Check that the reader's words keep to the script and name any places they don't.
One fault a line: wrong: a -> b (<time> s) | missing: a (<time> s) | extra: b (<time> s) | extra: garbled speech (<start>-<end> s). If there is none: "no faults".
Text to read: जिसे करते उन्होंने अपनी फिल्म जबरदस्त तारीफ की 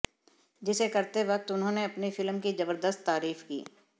extra: वक्त (1.2 s)
extra: की (2.4 s)